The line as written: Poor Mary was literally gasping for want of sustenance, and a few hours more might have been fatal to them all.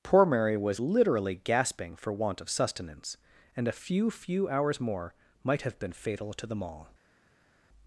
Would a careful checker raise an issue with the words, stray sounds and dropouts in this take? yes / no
yes